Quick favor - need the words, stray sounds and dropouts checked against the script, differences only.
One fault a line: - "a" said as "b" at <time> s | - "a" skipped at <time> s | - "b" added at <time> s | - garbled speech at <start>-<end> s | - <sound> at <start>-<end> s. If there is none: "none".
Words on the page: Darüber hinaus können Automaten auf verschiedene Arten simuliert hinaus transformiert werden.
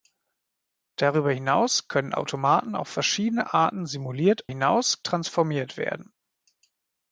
none